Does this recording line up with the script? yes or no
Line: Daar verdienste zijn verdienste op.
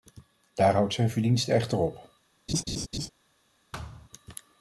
no